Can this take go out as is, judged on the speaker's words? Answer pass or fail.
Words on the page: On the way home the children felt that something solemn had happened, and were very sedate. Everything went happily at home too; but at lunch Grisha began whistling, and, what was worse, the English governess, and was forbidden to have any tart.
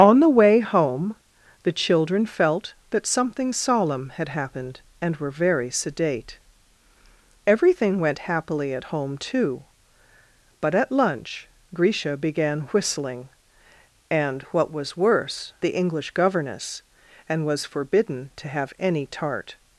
pass